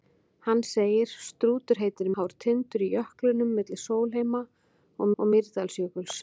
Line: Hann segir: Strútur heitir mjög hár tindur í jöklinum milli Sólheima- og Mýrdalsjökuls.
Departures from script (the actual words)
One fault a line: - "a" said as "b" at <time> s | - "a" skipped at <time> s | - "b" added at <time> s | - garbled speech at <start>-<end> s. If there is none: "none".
- "mjög" skipped at 2.1 s
- "og" added at 5.2 s